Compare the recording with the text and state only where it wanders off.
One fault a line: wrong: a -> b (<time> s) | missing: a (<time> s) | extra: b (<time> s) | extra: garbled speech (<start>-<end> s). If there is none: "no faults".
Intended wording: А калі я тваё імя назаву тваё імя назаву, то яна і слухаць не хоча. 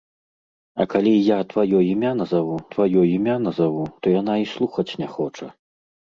no faults